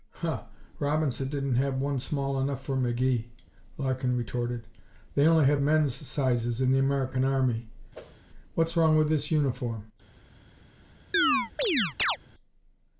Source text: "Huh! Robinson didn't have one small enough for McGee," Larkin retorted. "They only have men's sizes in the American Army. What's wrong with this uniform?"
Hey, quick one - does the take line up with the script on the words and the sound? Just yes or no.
no